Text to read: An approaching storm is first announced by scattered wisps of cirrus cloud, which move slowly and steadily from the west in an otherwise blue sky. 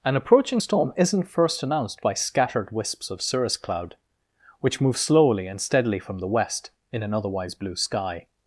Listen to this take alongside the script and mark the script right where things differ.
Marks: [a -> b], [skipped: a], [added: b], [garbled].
An approaching storm [is -> isn't] first announced by scattered wisps of cirrus cloud, which move slowly and steadily from the west in an otherwise blue sky.